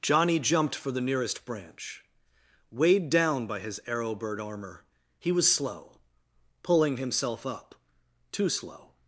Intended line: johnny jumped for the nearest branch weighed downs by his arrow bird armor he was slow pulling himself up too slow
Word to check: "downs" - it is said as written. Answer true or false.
false